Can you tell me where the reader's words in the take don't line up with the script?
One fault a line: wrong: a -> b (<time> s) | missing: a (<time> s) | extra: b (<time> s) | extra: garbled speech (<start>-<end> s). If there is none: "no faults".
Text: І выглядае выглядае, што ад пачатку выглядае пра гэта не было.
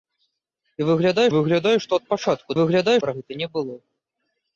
no faults